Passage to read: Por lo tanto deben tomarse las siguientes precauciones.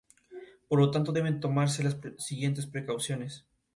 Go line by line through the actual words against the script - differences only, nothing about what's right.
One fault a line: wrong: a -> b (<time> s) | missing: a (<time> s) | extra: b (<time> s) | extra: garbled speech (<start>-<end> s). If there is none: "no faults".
no faults